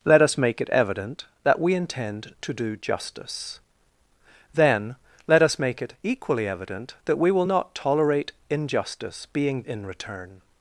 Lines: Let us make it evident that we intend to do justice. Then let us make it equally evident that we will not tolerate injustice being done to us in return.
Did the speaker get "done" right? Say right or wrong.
wrong